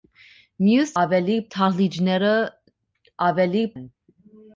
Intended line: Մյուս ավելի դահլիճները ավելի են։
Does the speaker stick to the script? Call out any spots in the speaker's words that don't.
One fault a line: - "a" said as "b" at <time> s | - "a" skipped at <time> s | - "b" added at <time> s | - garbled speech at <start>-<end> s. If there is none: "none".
none